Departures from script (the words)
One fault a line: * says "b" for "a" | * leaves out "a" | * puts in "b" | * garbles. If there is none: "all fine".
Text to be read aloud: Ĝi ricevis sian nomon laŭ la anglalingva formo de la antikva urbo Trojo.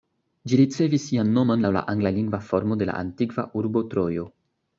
all fine